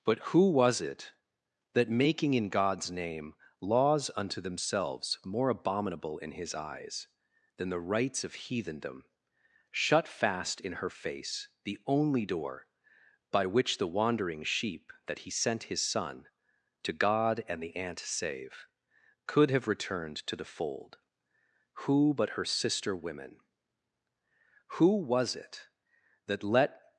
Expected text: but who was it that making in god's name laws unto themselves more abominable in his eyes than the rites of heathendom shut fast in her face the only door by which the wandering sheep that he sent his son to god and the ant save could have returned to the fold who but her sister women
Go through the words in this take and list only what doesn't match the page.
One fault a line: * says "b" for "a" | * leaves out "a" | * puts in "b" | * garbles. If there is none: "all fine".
* puts in "who was it that let"